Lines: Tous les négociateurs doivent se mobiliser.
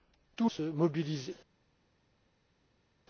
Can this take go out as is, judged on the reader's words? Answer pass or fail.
fail